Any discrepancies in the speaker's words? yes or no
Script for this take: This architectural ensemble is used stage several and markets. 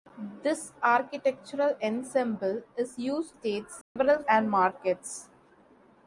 no